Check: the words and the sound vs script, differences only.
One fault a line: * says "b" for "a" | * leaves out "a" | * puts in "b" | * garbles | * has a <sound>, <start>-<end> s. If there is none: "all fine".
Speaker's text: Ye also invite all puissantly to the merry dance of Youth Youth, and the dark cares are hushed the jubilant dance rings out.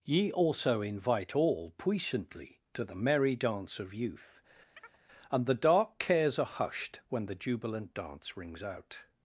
* leaves out "Youth"
* has a chirp, 4.8-5.0 s
* puts in "when"